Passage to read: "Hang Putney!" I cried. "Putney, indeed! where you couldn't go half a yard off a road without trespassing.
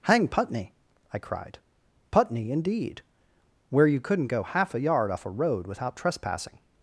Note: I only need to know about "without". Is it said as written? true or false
true